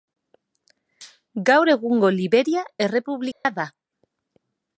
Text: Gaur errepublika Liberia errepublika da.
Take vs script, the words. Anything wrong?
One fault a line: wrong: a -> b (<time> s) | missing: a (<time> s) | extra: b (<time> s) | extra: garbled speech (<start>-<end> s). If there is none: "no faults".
wrong: errepublika -> egungo (1.8 s)